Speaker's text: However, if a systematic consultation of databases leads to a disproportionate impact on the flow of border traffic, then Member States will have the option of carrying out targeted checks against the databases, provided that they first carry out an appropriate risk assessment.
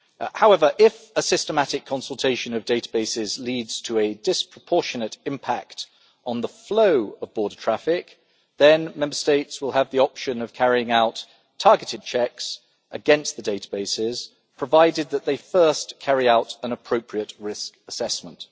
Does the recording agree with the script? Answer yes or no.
yes